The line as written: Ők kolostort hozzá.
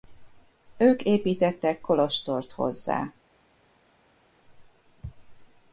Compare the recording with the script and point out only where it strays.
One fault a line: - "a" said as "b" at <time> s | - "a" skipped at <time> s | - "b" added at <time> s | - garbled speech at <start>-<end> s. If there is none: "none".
- "építettek" added at 1.0 s